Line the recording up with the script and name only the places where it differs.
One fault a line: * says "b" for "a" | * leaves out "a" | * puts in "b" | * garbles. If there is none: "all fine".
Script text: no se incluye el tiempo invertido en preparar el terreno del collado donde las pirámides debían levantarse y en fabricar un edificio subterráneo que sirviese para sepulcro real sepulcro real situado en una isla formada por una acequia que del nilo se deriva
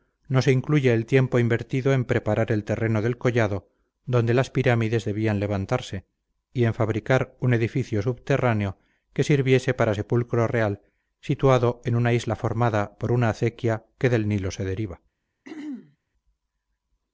* leaves out "sepulcro real"